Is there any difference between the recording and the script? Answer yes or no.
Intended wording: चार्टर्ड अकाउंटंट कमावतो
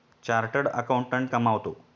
no